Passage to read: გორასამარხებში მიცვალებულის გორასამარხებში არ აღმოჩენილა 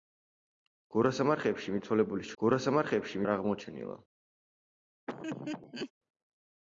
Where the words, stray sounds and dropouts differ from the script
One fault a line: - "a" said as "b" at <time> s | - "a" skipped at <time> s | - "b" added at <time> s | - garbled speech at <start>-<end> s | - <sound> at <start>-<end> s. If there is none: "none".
- laugh at 5.1-5.9 s